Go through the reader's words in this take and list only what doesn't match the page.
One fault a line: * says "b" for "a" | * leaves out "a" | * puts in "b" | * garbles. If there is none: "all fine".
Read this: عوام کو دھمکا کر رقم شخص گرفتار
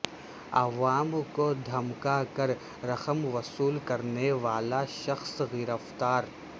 * puts in "وصول کرنے والا"